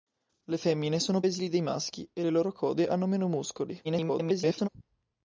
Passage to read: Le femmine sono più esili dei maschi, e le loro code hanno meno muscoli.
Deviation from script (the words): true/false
true